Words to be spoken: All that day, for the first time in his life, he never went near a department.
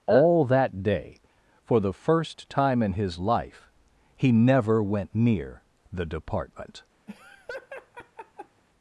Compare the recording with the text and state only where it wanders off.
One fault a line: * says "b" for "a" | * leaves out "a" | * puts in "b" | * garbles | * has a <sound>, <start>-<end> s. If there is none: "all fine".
* says "the" for "a"
* has a laugh, 7.1-8.6 s